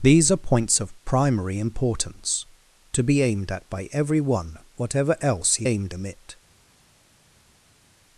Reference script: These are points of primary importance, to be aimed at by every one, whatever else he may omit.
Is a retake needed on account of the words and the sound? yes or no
yes